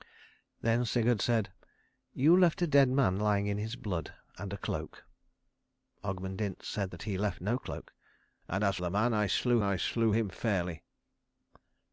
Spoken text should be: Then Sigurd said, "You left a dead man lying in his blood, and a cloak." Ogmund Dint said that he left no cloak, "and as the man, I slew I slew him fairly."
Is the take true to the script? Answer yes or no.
yes